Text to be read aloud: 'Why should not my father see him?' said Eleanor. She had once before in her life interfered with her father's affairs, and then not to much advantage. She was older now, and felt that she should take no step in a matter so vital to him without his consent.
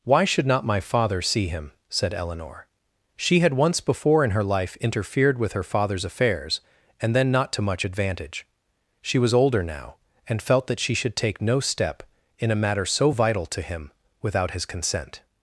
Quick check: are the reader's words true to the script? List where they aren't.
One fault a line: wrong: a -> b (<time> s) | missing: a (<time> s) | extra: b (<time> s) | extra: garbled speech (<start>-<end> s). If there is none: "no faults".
no faults